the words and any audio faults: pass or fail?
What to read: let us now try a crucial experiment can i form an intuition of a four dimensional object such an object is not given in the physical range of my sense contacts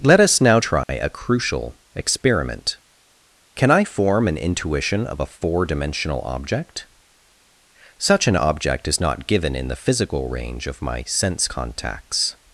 fail